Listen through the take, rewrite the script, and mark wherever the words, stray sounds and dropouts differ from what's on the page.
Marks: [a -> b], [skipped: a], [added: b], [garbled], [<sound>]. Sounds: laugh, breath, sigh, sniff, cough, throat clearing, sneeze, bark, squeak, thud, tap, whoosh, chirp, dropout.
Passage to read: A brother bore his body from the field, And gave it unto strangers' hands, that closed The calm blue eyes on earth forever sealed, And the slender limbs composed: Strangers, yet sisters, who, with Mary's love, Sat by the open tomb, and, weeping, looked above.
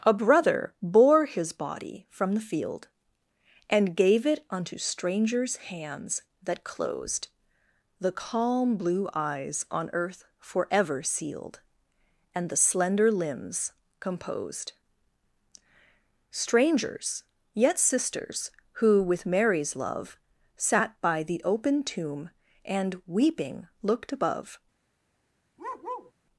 A brother bore his body from the field, And gave it unto strangers' hands, that closed The calm blue eyes on earth forever sealed, And the slender limbs composed: Strangers, yet sisters, who, with Mary's love, Sat by the open tomb, and, weeping, looked above. [bark]